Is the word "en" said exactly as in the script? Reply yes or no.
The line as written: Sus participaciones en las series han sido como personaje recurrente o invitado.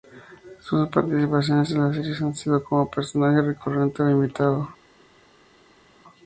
yes